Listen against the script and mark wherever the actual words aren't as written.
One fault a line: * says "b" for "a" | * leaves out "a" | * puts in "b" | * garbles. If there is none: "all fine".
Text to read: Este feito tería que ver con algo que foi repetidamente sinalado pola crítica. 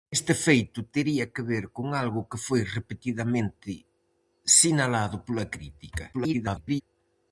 * garbles